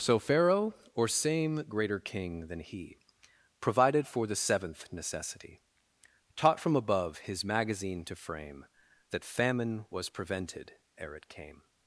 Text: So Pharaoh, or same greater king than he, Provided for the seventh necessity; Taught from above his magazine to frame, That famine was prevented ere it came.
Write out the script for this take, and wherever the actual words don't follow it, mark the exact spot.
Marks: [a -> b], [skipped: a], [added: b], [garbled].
So Pharaoh, or same greater king than he, Provided for the seventh necessity; Taught from above his magazine to frame, That famine was prevented ere it came.